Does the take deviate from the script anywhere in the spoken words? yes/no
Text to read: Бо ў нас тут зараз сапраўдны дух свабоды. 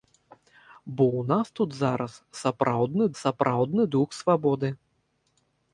yes